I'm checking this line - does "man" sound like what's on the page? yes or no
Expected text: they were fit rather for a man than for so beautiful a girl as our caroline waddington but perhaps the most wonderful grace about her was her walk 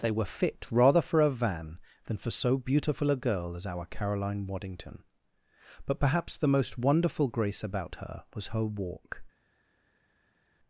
no